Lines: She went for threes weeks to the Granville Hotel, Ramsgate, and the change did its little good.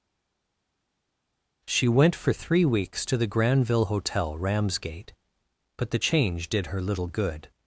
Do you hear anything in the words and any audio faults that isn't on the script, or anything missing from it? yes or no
yes